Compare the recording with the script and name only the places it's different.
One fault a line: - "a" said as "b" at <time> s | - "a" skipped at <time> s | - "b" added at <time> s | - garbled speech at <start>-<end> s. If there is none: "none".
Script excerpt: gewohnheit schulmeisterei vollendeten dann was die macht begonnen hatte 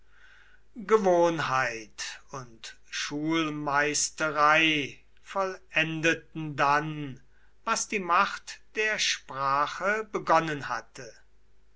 - "und" added at 2.3 s
- "der sprache" added at 8.8 s